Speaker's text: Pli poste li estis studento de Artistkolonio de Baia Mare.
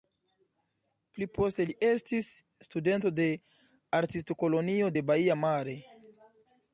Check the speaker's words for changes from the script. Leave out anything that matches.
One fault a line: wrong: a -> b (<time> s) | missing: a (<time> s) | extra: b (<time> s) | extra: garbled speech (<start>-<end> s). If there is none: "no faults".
no faults